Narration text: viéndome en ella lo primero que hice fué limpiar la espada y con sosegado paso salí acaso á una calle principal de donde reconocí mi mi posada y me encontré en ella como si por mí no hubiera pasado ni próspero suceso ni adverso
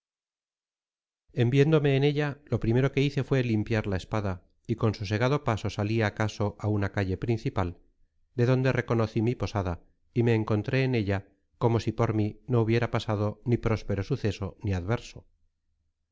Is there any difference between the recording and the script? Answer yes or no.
yes